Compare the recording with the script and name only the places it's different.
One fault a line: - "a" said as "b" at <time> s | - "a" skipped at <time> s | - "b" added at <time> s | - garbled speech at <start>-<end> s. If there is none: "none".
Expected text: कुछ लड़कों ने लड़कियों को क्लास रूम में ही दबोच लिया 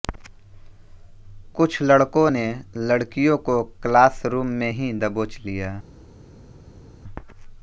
none